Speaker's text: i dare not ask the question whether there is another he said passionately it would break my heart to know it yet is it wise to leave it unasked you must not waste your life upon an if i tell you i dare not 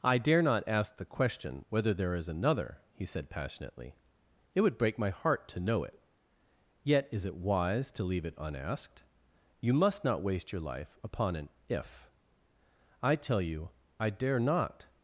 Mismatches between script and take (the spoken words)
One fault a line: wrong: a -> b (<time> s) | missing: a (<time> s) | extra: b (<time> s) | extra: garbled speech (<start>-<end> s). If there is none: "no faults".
no faults